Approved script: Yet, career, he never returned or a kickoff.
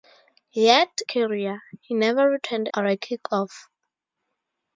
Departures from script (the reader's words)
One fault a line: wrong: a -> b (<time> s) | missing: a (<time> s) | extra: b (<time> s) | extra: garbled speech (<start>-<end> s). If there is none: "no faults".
no faults